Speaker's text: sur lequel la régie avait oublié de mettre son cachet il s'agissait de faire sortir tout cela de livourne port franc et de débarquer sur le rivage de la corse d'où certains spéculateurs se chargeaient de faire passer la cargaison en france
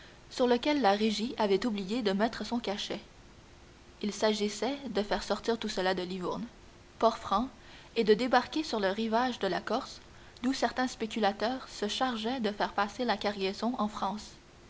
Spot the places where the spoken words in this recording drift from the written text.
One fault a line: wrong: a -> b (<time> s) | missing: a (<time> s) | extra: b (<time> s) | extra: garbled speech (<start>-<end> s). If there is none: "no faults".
no faults